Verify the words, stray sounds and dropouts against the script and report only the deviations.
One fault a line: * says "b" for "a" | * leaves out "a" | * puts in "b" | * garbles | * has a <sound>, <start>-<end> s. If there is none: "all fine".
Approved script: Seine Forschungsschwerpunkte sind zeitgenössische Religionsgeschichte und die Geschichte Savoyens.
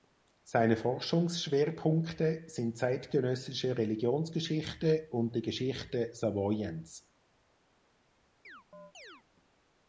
* has a chirp, 8.4-9.2 s